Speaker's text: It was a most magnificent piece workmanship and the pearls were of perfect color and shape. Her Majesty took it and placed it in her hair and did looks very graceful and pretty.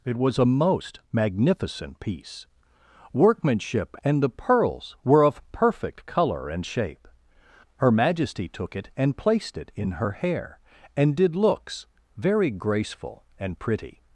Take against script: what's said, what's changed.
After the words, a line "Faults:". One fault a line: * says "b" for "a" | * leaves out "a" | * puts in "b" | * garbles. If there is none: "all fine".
It was a most magnificent piece workmanship and the pearls were of perfect color and shape. Her Majesty took it and placed it in her hair and did looks very graceful and pretty.
Faults:
all fine